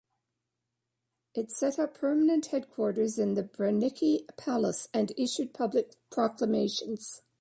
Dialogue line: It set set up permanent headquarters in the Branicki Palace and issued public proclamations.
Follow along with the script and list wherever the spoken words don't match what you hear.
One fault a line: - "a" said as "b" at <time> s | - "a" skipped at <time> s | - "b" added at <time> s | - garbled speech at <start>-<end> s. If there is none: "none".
- "set" skipped at 1.8 s